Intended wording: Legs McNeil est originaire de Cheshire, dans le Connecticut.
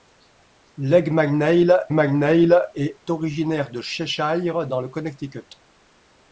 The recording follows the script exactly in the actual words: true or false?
false